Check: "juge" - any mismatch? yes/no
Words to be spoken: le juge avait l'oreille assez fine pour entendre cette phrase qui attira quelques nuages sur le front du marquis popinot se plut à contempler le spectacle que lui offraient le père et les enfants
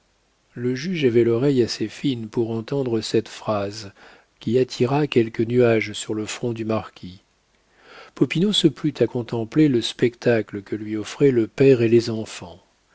no